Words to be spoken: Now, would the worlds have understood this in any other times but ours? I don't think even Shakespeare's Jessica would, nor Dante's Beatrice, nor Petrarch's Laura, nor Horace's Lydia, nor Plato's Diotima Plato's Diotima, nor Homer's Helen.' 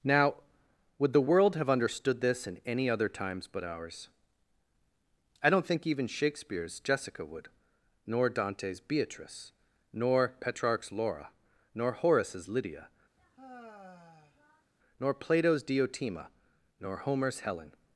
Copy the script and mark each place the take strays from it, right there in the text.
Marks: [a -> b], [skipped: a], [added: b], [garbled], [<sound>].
Now, would the [worlds -> world] have understood this in any other times but ours? I don't think even Shakespeare's Jessica would, nor Dante's Beatrice, nor Petrarch's Laura, nor Horace's Lydia, [sigh] nor Plato's Diotima [skipped: Plato's Diotima,] nor Homer's Helen.'